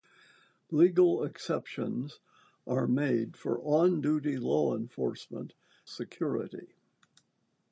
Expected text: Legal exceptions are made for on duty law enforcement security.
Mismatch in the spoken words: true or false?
false